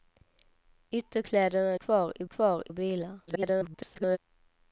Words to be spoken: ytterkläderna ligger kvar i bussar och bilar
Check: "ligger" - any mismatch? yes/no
yes